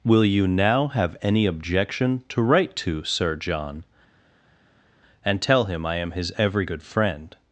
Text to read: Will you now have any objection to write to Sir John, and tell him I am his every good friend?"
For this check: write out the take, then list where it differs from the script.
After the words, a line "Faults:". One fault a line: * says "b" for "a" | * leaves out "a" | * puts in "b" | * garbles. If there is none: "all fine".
Will you now have any objection to write to Sir John, and tell him I am his every good friend?"
Faults:
all fine